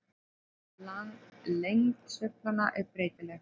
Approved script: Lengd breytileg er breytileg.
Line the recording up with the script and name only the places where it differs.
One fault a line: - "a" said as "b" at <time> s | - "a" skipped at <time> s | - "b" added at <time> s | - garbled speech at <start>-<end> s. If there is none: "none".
- "breytileg" said as "sveiflanna" at 2.1 s